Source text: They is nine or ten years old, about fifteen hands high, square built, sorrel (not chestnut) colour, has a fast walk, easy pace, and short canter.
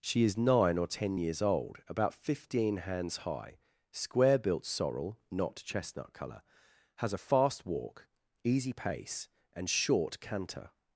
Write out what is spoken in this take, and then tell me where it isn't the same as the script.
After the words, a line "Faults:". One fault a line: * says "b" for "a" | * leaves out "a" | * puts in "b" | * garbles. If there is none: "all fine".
She is nine or ten years old, about fifteen hands high, square built, sorrel (not chestnut) colour, has a fast walk, easy pace, and short canter.
Faults:
* says "She" for "They"